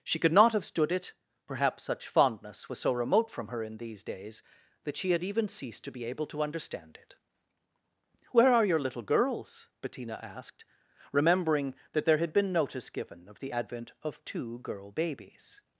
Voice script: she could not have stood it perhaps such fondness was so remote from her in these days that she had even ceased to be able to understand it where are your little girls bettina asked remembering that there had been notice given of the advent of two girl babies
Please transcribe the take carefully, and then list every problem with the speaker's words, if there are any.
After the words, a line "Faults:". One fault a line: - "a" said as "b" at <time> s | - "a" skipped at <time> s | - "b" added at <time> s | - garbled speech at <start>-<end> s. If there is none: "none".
she could not have stood it perhaps such fondness was so remote from her in these days that she had even ceased to be able to understand it where are your little girls bettina asked remembering that there had been notice given of the advent of two girl babies
Faults:
none